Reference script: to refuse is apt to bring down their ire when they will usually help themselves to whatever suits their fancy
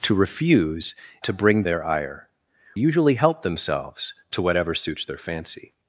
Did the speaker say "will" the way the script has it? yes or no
no